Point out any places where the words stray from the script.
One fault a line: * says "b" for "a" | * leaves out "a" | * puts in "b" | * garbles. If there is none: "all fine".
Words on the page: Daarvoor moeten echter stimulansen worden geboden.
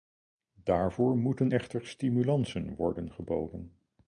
all fine